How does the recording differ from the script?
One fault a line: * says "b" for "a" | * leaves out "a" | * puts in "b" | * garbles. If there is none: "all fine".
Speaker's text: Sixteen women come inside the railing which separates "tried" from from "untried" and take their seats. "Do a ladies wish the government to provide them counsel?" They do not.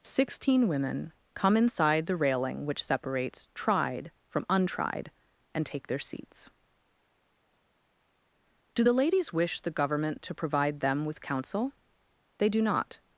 * leaves out "from"
* says "the" for "a"
* puts in "with"